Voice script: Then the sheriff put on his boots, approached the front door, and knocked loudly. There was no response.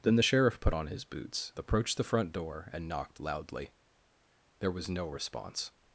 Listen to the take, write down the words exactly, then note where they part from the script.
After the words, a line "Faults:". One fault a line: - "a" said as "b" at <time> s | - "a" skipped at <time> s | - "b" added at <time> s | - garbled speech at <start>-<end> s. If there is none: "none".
Then the sheriff put on his boots, approached the front door, and knocked loudly. There was no response.
Faults:
none